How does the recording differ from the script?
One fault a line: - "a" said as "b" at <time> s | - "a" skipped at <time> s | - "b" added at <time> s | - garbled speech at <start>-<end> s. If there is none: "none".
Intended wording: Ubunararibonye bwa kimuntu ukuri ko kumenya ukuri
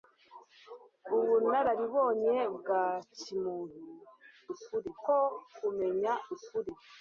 none